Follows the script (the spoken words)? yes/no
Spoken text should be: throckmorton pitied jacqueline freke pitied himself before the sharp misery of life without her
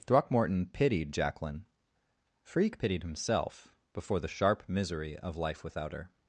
yes